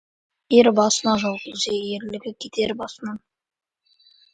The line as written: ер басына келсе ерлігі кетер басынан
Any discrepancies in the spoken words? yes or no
yes